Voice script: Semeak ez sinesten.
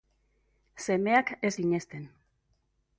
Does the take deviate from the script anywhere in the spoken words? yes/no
no